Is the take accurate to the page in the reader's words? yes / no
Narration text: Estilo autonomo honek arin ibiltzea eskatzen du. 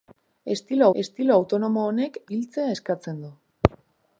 no